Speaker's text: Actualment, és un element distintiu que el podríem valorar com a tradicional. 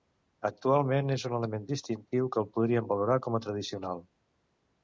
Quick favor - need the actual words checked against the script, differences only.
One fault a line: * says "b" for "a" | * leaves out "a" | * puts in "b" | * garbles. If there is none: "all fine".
all fine